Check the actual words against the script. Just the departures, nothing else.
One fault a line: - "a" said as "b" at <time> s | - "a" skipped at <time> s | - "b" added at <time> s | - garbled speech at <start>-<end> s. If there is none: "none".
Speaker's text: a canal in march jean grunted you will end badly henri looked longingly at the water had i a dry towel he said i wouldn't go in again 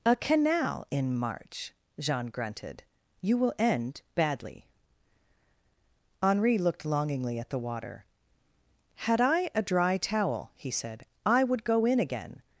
- "wouldn't" said as "would" at 11.4 s